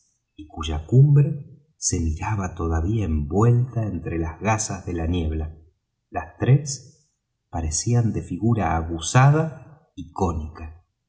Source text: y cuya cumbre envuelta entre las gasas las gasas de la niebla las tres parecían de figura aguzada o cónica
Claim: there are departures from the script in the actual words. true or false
true